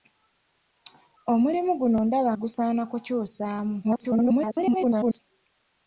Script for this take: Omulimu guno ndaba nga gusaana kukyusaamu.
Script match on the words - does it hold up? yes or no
no